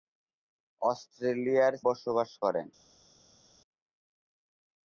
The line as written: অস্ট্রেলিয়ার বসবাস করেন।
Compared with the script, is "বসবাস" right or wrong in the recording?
right